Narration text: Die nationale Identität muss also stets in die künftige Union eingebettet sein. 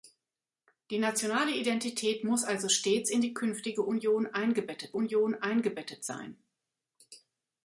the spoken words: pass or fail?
fail